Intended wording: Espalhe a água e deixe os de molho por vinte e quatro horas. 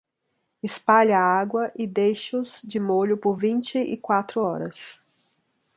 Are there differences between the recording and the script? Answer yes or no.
no